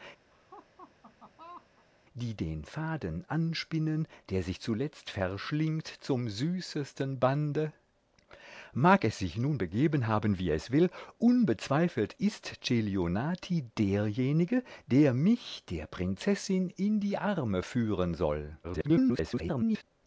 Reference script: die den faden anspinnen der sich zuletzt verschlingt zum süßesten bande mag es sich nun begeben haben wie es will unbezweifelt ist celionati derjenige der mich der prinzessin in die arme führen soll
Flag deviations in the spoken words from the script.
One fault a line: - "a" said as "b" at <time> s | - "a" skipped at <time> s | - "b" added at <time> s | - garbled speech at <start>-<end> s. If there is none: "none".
- garbled speech at 18.6-19.8 s